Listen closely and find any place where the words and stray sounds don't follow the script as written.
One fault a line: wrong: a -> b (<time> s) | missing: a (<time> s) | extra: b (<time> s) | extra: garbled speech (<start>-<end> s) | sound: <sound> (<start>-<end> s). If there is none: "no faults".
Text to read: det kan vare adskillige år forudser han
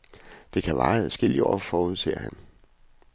no faults